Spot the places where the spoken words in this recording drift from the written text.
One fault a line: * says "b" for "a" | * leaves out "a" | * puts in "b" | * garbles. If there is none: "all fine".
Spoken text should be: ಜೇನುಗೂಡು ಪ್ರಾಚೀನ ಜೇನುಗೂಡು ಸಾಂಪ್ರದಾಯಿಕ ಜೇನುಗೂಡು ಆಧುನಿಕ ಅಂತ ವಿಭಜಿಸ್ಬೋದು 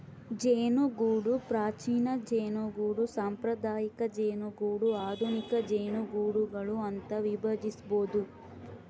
* puts in "ಜೇನುಗೂಡುಗಳು"